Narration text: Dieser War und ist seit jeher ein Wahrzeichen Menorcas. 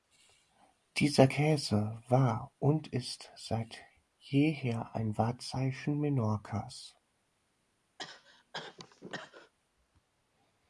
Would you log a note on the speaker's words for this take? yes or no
yes